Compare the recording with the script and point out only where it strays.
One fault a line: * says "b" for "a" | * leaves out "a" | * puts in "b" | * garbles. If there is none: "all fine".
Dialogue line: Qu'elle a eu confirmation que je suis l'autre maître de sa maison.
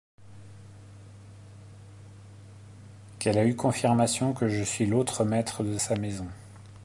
all fine